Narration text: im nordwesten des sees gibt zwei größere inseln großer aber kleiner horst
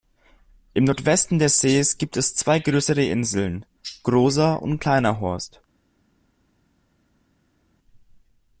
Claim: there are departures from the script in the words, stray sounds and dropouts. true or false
true